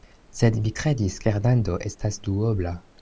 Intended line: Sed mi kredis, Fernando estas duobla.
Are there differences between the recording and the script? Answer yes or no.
no